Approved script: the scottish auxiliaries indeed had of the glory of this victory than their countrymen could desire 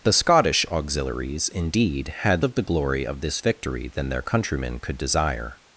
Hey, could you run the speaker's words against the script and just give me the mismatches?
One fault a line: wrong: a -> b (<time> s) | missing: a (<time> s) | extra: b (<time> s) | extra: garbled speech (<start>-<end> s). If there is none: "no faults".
no faults